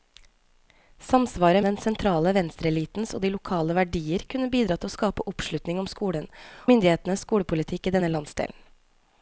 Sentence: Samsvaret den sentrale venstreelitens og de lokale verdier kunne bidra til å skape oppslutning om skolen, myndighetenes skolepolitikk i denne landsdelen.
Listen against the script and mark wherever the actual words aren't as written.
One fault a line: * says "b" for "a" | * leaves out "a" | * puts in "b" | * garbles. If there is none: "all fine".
all fine